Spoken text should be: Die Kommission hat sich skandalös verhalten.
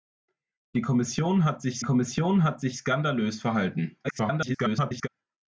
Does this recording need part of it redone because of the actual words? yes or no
yes